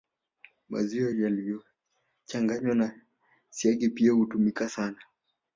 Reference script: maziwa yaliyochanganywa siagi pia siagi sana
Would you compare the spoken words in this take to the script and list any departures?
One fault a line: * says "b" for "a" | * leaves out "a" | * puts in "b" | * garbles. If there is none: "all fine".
* puts in "na"
* says "hutumika" for "siagi"